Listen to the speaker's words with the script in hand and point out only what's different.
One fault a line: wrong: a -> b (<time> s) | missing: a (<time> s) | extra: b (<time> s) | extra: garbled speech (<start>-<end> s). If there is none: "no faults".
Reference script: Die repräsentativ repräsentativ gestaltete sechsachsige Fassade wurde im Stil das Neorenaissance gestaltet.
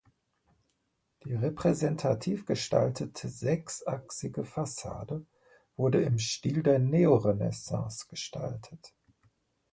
missing: repräsentativ (2.5 s)
wrong: das -> der (6.6 s)